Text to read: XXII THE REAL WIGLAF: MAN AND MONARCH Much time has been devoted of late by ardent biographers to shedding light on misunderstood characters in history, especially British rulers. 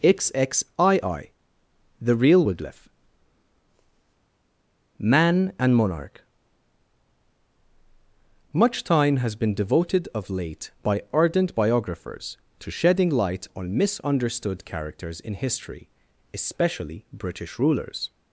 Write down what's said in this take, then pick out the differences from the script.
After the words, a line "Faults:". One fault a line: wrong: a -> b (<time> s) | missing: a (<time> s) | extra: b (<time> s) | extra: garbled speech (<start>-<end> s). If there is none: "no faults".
XXII THE REAL WIGLAF: MAN AND MONARCH Much time has been devoted of late by ardent biographers to shedding light on misunderstood characters in history, especially British rulers.
Faults:
no faults